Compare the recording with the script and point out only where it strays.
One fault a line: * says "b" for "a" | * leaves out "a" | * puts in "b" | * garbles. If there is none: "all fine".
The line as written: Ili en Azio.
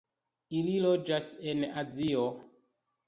* puts in "loĝas"